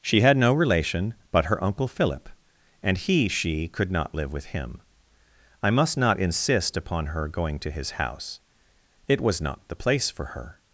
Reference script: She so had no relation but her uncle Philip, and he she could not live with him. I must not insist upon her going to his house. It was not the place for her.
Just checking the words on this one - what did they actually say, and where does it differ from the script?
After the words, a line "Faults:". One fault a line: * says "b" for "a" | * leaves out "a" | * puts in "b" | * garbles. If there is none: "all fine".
She had no relation but her uncle Philip, and he she could not live with him. I must not insist upon her going to his house. It was not the place for her.
Faults:
* leaves out "so"